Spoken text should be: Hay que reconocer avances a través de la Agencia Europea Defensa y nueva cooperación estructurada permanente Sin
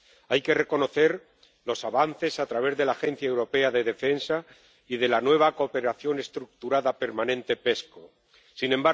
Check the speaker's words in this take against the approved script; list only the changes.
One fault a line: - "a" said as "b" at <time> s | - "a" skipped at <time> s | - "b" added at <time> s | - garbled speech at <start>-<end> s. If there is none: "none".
- "los" added at 1.6 s
- "de" added at 3.7 s
- "de la" added at 5.0 s